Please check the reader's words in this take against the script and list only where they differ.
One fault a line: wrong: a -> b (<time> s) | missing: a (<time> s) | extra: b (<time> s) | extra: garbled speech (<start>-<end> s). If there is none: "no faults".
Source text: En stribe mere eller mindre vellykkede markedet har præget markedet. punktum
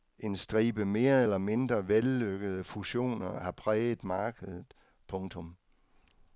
wrong: markedet -> fusioner (2.6 s)